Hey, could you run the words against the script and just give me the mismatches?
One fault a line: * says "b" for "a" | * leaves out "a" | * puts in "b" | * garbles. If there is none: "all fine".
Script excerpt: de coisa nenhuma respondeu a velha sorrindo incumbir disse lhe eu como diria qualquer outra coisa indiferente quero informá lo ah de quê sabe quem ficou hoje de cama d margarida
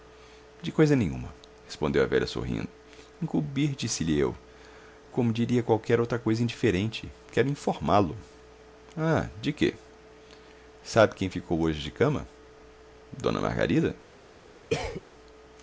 all fine